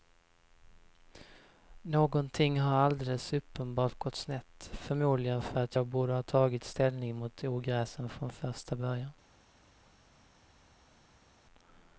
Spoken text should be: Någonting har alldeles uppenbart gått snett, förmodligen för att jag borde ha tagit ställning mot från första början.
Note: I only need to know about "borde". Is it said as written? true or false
true